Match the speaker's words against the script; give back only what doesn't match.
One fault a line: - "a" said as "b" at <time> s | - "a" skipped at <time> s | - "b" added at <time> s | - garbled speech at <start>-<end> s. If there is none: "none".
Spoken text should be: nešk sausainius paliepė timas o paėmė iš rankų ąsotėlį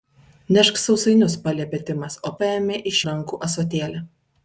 none